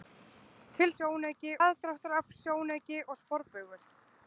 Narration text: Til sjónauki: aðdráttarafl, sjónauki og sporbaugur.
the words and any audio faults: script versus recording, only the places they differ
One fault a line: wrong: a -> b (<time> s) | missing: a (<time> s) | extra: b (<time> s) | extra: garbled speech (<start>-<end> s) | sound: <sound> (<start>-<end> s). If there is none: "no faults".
no faults